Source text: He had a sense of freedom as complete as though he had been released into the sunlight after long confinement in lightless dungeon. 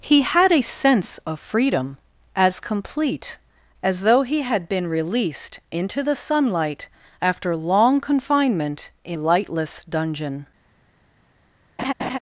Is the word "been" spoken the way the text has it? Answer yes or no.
yes